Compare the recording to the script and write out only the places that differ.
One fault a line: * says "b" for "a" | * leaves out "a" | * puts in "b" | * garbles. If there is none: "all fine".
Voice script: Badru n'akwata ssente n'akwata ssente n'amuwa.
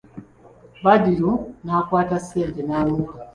* leaves out "n'akwata ssente"